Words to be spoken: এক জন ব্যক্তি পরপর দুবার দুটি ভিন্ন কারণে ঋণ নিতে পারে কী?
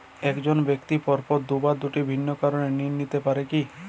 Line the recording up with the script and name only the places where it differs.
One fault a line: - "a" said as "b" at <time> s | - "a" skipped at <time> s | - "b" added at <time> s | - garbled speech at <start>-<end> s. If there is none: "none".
none